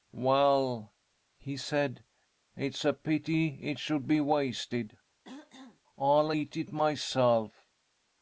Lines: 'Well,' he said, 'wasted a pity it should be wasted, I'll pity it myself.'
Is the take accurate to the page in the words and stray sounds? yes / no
no